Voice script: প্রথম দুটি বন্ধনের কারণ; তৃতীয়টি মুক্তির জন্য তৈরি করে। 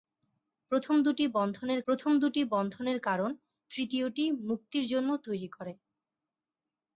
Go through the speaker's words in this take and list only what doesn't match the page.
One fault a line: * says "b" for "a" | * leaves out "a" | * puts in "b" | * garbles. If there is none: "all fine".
* puts in "প্রথম দুটি বন্ধনের"